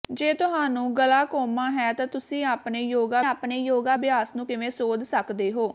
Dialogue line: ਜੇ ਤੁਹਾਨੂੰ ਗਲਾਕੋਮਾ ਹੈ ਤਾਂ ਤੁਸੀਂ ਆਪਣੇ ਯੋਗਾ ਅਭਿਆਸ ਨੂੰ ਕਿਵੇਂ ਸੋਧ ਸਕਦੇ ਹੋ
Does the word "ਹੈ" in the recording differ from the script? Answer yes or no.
no